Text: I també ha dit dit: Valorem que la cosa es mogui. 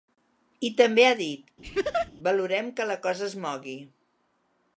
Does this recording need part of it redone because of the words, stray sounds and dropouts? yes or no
yes